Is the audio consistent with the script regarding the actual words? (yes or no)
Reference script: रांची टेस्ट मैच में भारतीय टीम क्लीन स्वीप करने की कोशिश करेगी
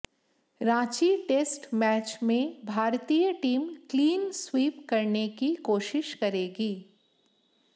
yes